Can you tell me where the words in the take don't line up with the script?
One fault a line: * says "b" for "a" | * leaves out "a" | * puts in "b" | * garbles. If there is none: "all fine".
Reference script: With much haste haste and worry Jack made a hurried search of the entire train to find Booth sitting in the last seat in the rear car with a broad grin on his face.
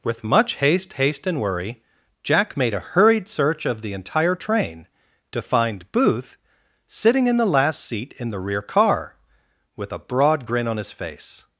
all fine